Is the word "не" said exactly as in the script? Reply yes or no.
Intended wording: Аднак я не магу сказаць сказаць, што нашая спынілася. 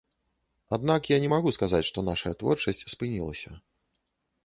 yes